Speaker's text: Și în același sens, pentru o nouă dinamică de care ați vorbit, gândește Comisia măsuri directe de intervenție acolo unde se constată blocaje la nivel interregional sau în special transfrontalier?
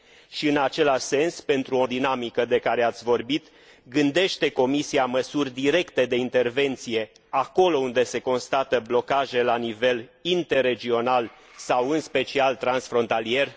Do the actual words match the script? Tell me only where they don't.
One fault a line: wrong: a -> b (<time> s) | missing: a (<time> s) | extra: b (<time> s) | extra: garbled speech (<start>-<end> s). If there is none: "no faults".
missing: nouă (1.9 s)